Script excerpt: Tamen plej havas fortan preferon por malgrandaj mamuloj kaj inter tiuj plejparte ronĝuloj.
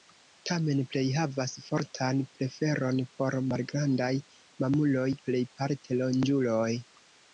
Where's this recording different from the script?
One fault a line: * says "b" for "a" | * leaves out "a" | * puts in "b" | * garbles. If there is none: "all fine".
* leaves out "kaj inter tiuj"